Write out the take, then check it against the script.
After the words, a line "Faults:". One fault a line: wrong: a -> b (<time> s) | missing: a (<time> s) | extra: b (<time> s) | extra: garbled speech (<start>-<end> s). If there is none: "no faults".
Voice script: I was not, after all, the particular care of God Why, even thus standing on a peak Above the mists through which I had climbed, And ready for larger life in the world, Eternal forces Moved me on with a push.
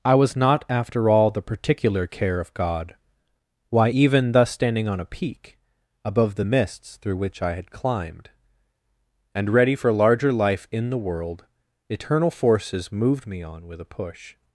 I was not, after all, the particular care of God Why, even thus standing on a peak Above the mists through which I had climbed, And ready for larger life in the world, Eternal forces Moved me on with a push.
Faults:
no faults